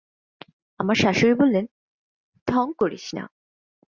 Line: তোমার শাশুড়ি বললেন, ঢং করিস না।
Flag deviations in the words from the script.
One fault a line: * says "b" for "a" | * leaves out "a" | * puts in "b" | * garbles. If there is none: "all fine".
* says "আমার" for "তোমার"